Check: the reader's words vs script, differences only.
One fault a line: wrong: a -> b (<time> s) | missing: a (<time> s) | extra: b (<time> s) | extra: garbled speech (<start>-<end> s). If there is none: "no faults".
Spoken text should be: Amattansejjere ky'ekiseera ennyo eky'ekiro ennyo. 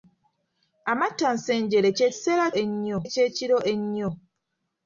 no faults